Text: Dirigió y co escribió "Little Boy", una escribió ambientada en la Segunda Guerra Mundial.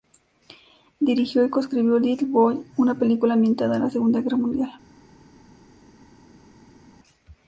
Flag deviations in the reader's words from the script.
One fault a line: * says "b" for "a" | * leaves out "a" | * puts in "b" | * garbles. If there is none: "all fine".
* says "película" for "escribió"